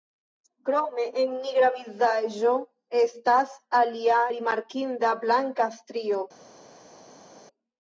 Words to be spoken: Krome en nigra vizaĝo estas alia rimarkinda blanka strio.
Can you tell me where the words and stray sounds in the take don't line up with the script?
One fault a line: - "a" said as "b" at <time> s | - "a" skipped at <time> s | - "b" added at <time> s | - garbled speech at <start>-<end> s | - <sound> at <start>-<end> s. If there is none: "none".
none